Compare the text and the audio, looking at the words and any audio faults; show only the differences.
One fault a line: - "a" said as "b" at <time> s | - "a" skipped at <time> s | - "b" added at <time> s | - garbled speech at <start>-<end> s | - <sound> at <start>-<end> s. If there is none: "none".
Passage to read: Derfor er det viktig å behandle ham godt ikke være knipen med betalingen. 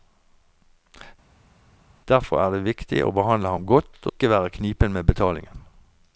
none